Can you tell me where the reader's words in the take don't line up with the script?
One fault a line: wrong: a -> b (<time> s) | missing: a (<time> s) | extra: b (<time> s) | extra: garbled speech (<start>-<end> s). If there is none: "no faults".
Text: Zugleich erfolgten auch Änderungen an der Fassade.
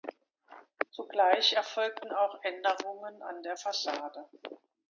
no faults